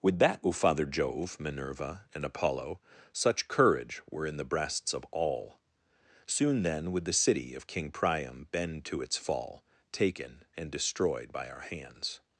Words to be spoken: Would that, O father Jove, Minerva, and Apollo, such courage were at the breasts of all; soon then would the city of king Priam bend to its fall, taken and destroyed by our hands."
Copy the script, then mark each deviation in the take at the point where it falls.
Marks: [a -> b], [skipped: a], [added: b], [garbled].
Would that, O father Jove, Minerva, and Apollo, such courage were [at -> in] the breasts of all; soon then would the city of king Priam bend to its fall, taken and destroyed by our hands."